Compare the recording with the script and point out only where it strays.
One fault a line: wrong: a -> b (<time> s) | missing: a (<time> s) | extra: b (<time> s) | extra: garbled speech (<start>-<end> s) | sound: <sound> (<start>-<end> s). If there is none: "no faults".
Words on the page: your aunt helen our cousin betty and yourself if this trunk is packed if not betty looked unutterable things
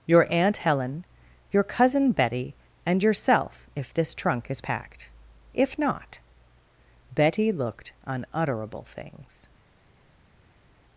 wrong: our -> your (1.5 s)